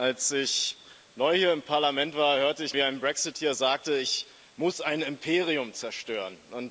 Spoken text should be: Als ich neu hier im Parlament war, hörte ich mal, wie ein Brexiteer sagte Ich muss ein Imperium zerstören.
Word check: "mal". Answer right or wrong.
wrong